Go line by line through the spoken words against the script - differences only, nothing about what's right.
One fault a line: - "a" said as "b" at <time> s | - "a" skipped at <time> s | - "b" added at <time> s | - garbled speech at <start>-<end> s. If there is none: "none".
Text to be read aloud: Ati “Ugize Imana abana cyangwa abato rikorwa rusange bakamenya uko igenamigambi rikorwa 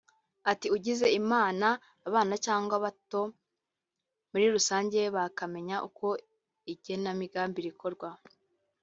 - "rikorwa" said as "muri" at 4.3 s